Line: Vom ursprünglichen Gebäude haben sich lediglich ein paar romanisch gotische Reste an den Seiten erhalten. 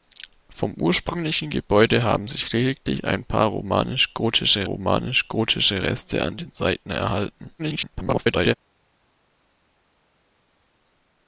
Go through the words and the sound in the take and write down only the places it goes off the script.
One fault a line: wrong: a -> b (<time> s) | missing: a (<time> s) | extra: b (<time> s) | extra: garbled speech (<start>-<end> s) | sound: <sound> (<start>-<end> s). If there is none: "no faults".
extra: romanisch gotische (4.6 s)
extra: garbled speech (7.6-8.5 s)